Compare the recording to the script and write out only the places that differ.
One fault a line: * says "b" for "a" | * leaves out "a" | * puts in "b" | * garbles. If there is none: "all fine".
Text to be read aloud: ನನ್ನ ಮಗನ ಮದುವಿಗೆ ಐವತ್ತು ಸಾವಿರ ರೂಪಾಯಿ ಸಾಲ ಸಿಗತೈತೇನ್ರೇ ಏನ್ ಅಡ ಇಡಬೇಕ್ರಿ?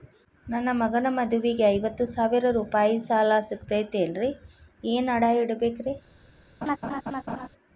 all fine